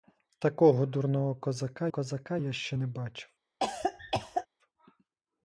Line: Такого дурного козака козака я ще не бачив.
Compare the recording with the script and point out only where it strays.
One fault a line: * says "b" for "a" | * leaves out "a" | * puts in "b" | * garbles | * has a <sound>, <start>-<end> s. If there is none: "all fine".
* has a cough, 3.6-4.5 s